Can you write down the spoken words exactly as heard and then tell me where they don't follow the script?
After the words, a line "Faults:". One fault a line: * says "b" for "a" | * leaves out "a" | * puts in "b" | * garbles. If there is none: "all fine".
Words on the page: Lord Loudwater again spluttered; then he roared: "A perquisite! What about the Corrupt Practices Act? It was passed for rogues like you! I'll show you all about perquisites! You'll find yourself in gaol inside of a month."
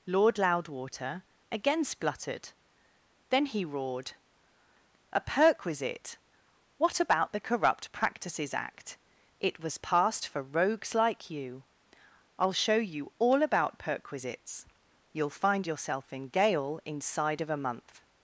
Lord Loudwater again spluttered; then he roared: "A perquisite! What about the Corrupt Practices Act? It was passed for rogues like you! I'll show you all about perquisites! You'll find yourself in gaol inside of a month."
Faults:
all fine